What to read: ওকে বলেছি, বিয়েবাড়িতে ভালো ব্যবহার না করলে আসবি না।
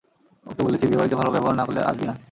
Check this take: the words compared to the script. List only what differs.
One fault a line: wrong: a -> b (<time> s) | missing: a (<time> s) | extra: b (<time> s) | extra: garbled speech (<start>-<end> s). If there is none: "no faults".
no faults